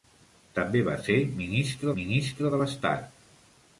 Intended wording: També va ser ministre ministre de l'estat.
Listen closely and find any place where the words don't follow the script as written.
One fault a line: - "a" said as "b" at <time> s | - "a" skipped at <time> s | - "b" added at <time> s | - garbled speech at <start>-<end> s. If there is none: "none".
none